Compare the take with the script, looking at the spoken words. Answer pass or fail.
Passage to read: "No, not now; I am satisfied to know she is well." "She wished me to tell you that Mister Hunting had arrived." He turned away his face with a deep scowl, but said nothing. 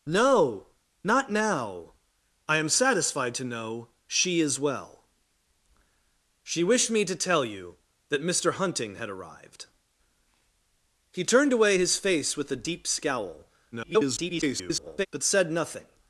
fail